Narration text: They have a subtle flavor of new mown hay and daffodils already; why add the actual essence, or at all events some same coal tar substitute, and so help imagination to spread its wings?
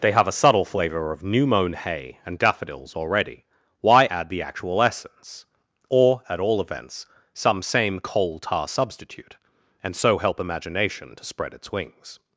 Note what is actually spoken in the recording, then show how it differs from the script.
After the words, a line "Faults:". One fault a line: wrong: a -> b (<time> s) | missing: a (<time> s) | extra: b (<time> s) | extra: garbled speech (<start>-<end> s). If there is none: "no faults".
They have a subtle flavor of new mown hay and daffodils already; why add the actual essence, or at all events some same coal tar substitute, and so help imagination to spread its wings?
Faults:
no faults